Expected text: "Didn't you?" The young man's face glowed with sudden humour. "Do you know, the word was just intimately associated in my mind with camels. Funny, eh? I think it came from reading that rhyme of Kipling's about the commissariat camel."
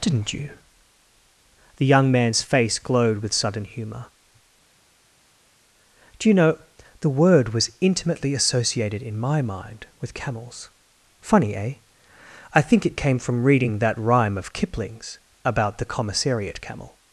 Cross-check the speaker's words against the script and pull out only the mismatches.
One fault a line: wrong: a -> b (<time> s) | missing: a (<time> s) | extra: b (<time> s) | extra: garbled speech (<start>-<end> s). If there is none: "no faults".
missing: just (7.7 s)